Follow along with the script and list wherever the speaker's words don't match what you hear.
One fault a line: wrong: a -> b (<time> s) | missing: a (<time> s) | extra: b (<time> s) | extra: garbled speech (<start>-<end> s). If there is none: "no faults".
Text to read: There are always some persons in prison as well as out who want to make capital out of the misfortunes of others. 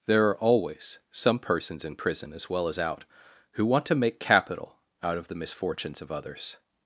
no faults